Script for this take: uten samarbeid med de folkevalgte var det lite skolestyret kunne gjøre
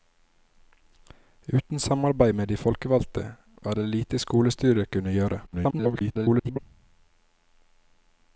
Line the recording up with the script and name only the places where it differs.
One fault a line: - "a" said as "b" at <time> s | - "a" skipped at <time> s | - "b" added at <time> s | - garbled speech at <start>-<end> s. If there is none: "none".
- garbled speech at 5.5-6.6 s